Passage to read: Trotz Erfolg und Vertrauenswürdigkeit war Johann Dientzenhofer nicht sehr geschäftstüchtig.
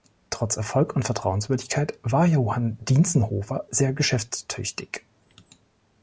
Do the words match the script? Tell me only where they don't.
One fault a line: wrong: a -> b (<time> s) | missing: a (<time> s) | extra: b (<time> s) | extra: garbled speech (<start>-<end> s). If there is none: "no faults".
missing: nicht (3.7 s)